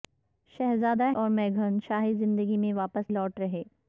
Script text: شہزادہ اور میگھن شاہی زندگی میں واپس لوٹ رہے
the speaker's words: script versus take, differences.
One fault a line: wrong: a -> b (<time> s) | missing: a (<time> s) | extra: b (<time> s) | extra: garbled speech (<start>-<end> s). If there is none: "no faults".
no faults